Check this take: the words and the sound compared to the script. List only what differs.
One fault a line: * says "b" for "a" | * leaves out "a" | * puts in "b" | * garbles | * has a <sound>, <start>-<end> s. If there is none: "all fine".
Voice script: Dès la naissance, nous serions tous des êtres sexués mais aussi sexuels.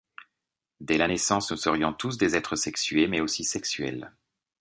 all fine